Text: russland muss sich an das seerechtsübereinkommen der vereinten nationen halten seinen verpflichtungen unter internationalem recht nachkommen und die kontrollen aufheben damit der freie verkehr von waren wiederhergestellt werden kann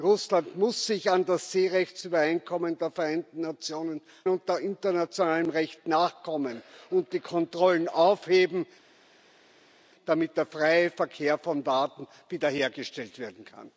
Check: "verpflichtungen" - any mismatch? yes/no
yes